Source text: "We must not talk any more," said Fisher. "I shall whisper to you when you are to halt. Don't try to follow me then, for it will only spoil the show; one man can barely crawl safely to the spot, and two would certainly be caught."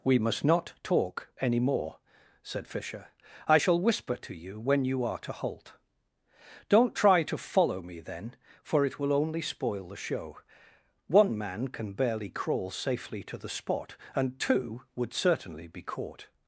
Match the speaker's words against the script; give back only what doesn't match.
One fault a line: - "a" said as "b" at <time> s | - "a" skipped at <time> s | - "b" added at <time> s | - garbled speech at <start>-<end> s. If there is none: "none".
none